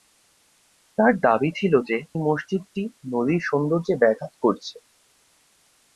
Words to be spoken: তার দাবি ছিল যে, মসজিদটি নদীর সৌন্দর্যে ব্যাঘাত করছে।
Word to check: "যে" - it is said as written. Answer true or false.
true